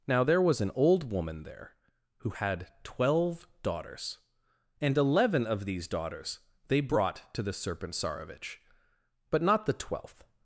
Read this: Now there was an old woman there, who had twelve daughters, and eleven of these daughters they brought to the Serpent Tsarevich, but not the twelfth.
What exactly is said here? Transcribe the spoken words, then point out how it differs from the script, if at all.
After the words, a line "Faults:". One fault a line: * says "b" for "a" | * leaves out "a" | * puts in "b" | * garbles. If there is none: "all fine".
Now there was an old woman there, who had twelve daughters, and eleven of these daughters they brought to the Serpent Tsarevich, but not the twelfth.
Faults:
all fine